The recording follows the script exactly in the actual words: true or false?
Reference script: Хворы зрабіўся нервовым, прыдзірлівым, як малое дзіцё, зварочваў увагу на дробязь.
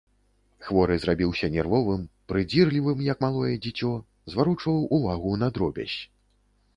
true